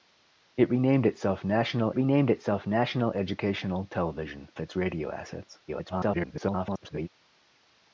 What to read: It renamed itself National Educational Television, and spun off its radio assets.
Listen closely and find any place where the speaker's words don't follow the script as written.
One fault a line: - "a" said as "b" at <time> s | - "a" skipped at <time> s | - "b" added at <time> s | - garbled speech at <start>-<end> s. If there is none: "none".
- "Educational Television and spun off" said as "renamed itself National Educational Television" at 1.9 s
- garbled speech at 5.7-7.1 s